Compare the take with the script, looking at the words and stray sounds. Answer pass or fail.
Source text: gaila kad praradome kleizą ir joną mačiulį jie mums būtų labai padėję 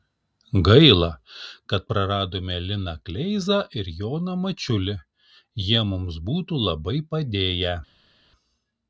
fail